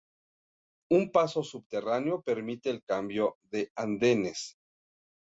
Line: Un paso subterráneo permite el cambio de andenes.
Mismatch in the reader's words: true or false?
false